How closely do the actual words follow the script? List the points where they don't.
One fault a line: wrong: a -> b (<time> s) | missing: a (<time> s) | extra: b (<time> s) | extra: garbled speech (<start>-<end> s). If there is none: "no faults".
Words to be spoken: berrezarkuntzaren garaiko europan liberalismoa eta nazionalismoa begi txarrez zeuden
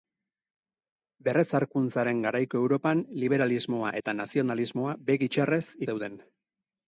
no faults